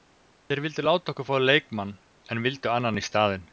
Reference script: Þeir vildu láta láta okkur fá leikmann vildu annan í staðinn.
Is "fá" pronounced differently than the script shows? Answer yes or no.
no